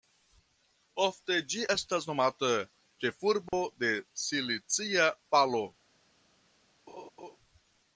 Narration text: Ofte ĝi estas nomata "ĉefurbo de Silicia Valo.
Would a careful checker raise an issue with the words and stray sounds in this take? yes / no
yes